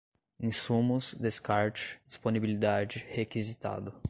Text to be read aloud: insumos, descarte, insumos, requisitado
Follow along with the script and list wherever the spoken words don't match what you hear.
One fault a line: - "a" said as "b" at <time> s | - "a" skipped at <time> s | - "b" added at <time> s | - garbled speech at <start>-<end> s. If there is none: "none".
- "insumos" said as "disponibilidade" at 2.0 s